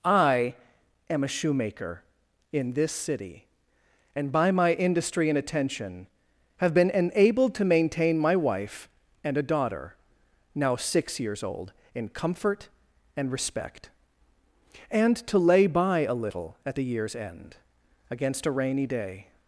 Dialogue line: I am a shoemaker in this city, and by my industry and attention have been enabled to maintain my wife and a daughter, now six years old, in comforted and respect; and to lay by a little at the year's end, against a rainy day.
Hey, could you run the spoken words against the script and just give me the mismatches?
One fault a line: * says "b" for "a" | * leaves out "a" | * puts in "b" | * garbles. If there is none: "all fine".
* says "comfort" for "comforted"